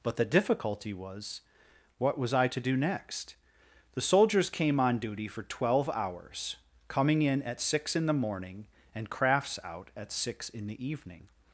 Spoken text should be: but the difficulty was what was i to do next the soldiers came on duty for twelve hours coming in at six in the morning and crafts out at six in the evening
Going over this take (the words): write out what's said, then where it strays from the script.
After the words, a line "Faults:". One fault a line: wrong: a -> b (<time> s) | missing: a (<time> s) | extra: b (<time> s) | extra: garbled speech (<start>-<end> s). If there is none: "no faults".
but the difficulty was what was i to do next the soldiers came on duty for twelve hours coming in at six in the morning and crafts out at six in the evening
Faults:
no faults